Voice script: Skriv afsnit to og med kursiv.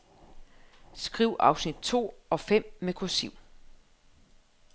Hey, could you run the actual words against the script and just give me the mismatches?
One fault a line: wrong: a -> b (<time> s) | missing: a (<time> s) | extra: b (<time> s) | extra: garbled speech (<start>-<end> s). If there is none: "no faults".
extra: fem (2.4 s)